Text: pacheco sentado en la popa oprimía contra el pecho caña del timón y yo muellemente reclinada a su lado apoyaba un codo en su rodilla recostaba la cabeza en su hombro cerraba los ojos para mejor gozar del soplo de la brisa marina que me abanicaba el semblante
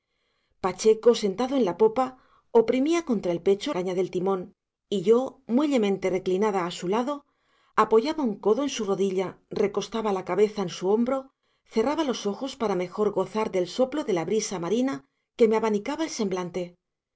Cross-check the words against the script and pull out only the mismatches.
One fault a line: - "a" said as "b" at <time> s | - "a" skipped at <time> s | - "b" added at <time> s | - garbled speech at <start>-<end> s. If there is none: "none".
none